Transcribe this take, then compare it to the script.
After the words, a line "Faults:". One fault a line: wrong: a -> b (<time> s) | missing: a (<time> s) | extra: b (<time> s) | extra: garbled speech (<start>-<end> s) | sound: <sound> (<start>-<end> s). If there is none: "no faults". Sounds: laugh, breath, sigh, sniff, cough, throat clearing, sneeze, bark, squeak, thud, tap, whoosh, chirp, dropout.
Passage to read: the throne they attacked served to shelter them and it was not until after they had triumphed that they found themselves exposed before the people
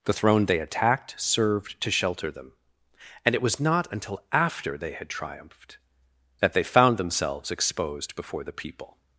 the throne they attacked served to shelter them and it was not until after they had triumphed that they found themselves exposed before the people
Faults:
no faults